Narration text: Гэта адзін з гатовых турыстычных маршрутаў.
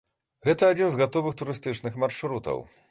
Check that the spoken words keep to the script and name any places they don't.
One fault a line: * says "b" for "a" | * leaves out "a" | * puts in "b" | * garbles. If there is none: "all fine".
all fine